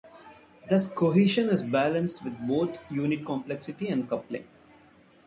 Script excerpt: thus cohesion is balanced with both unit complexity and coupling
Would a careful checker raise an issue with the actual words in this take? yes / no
no